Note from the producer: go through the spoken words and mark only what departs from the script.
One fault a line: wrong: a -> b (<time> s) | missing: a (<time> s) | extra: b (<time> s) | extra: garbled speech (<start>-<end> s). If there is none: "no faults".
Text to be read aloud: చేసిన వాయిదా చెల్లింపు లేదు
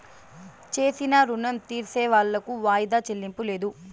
extra: రుణం తీర్సేవాళ్లకు (1.2 s)